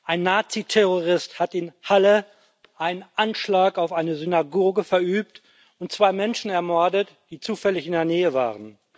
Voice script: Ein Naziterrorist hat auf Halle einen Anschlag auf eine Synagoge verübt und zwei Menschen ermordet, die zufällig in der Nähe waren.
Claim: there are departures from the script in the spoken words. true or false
true